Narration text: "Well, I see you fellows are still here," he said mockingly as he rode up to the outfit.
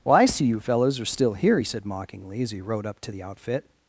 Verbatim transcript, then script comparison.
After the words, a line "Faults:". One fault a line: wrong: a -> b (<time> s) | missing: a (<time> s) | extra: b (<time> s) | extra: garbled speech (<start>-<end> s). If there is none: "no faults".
"Well, I see you fellows are still here," he said mockingly as he rode up to the outfit.
Faults:
no faults